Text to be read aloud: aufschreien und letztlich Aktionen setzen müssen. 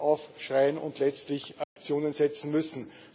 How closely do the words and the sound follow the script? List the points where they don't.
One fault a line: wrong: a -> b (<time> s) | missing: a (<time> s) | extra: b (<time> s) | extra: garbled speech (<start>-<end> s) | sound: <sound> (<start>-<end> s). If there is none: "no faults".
sound: dropout (1.6-1.8 s)